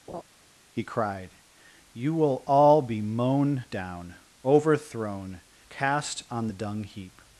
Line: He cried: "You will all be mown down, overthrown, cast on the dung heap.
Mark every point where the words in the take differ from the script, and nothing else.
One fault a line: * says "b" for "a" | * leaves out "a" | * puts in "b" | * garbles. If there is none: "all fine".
all fine